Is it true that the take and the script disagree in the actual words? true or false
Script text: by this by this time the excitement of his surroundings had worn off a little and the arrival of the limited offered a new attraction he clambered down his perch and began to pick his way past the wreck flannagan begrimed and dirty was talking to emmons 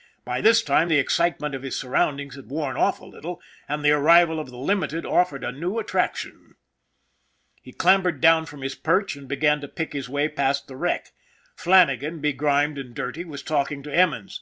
true